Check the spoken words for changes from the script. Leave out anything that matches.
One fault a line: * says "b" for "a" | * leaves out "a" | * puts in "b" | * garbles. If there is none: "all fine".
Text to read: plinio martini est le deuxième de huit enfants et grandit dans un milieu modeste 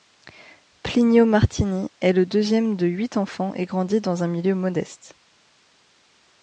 all fine